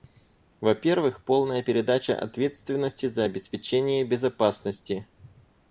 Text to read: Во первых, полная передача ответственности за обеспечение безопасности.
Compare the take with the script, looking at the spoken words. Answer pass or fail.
pass